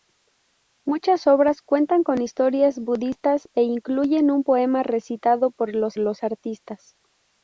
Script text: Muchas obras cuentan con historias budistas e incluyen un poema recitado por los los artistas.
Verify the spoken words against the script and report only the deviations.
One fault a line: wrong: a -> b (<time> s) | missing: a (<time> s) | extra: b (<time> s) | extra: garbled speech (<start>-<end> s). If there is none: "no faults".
no faults